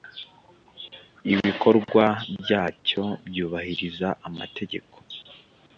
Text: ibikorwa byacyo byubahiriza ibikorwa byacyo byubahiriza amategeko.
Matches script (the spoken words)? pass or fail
fail